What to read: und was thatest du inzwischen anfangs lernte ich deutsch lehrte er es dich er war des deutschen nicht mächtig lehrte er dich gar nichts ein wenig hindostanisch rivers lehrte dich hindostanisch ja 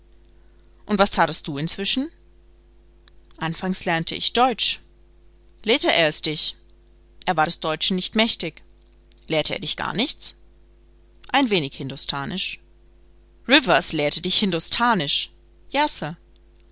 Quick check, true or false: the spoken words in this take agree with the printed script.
true